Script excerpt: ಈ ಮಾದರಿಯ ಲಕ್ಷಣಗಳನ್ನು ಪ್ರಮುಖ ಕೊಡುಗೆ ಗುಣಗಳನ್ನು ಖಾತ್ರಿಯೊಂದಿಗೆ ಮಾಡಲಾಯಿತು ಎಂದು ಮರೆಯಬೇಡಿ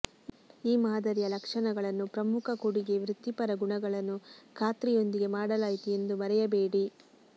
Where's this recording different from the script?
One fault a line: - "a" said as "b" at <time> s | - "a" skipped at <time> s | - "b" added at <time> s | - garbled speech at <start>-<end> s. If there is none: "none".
- "ವೃತ್ತಿಪರ" added at 3.0 s